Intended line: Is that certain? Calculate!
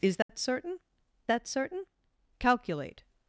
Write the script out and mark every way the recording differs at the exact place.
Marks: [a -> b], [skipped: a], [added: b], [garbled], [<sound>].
Is that [dropout] certain? [added: that certain] Calculate!